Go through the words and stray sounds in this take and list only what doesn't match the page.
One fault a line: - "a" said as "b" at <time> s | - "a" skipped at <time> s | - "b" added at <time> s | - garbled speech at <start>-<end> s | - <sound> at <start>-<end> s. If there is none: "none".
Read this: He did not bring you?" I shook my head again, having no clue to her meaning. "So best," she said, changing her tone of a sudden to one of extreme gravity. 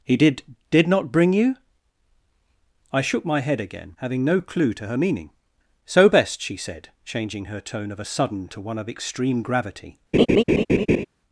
- "did" added at 0.7 s
- laugh at 10.1-11.1 s